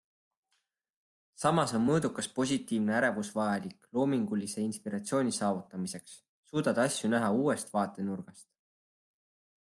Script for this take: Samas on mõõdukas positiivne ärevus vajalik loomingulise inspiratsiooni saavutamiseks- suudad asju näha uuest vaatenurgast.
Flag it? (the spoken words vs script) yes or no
no